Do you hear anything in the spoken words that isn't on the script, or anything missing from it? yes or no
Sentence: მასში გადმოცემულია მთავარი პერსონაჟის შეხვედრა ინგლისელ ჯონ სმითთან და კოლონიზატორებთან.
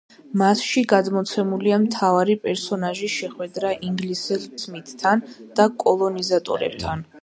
yes